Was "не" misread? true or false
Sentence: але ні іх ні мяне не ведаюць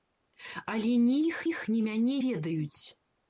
true